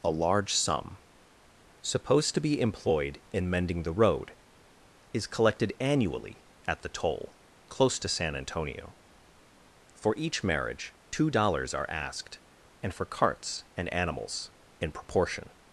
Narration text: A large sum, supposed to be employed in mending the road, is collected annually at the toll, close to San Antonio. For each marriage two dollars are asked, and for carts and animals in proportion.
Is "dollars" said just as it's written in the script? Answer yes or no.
yes